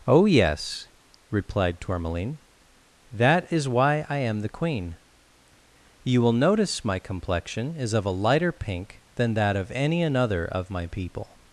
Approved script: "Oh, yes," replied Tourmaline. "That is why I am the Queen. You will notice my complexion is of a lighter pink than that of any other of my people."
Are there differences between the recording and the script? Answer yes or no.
yes